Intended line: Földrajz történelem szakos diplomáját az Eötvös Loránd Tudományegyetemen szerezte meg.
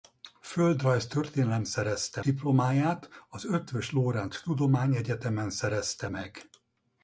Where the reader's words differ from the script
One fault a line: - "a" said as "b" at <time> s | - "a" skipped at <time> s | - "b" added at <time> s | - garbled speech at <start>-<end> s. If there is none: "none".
- "szakos" said as "szerezte" at 1.6 s